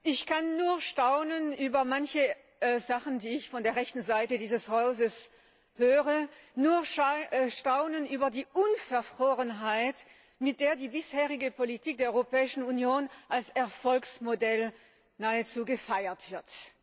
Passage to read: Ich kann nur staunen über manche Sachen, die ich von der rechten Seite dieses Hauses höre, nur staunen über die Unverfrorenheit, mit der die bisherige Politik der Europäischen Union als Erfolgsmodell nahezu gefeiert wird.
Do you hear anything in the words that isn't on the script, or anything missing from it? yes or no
no